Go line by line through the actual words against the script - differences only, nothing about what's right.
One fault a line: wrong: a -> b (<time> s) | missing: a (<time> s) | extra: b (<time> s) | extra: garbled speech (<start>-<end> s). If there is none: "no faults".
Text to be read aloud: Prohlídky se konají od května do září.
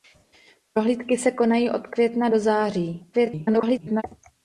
extra: garbled speech (3.1-4.0 s)